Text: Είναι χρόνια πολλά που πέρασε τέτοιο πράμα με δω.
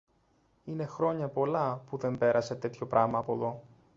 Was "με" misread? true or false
true